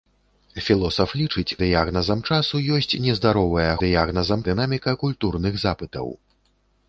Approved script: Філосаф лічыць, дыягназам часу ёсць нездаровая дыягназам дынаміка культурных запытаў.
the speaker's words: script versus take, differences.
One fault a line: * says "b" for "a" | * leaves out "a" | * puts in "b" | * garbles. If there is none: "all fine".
all fine